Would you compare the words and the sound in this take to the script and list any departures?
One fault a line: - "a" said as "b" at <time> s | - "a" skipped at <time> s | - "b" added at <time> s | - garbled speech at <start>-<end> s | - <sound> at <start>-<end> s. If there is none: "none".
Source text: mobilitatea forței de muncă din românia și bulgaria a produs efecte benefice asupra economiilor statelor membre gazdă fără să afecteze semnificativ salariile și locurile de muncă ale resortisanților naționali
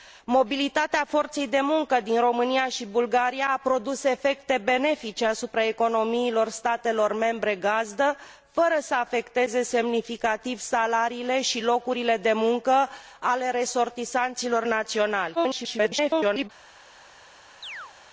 - garbled speech at 15.3-16.5 s
- chirp at 17.6-17.9 s